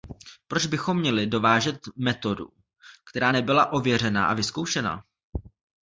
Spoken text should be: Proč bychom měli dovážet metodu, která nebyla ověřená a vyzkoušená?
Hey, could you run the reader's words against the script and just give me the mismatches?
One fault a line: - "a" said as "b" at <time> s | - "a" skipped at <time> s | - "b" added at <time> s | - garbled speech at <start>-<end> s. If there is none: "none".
none